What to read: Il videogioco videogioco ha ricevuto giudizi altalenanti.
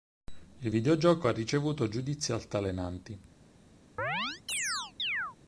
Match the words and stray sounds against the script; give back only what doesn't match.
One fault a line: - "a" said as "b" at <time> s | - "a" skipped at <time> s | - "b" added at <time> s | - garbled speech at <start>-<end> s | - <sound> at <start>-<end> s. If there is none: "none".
- "videogioco" skipped at 1.3 s
- chirp at 4.0-5.4 s